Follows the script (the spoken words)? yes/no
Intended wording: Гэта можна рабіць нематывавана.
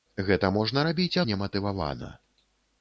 yes